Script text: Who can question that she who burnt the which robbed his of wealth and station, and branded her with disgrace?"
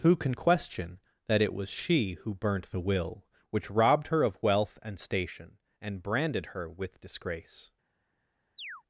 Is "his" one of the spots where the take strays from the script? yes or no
yes